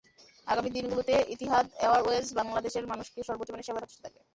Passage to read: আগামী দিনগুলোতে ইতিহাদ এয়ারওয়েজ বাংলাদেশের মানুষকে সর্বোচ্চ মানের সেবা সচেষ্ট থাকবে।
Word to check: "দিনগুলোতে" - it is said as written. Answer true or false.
true